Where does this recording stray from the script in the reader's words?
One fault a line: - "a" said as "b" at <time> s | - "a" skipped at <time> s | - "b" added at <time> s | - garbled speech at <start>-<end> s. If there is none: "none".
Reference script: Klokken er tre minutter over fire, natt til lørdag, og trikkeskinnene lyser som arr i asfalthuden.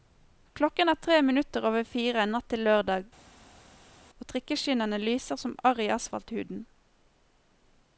none